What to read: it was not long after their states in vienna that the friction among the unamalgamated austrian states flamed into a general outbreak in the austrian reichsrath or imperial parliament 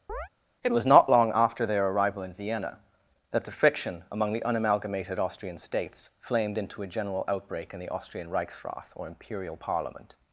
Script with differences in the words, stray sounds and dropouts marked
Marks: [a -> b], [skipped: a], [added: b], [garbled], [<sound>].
[chirp] it was not long after their [states -> arrival] in vienna that the friction among the unamalgamated austrian states flamed into a general outbreak in the austrian reichsrath or imperial parliament